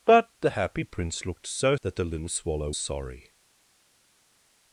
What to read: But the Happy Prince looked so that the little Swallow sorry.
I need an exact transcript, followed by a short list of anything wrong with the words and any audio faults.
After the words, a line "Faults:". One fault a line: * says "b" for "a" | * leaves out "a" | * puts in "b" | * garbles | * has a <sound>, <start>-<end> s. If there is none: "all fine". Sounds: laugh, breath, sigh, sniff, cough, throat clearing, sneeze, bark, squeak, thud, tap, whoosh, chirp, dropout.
But the Happy Prince looked so that the little Swallow sorry.
Faults:
all fine